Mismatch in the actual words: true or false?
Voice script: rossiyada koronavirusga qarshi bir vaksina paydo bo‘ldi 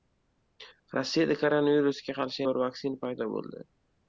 false